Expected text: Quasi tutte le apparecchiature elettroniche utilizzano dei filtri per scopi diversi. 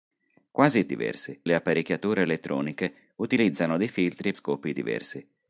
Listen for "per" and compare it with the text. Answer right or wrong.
wrong